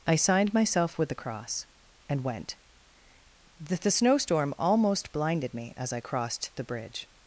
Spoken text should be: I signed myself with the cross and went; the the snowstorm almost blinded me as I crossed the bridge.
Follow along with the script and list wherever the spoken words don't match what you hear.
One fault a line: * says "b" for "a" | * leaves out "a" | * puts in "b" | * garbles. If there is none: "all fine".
all fine